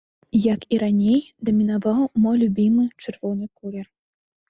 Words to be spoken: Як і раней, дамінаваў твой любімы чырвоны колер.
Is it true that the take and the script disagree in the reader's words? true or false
true